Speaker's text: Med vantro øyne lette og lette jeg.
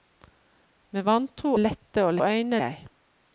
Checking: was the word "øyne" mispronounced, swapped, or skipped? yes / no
yes